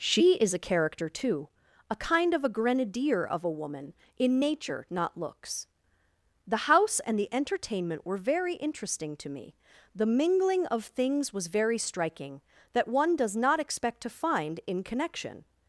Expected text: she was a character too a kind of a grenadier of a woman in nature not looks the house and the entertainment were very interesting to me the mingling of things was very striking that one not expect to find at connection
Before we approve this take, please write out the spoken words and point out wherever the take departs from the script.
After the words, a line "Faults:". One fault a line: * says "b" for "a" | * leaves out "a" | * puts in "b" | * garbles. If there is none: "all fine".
she is a character too a kind of a grenadier of a woman in nature not looks the house and the entertainment were very interesting to me the mingling of things was very striking that one does not expect to find in connection
Faults:
* says "is" for "was"
* puts in "does"
* says "in" for "at"